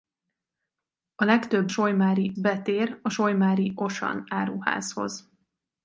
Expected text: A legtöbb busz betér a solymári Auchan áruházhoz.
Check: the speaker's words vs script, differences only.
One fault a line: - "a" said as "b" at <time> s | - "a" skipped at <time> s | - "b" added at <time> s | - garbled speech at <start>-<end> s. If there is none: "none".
- "busz" said as "solymári" at 1.7 s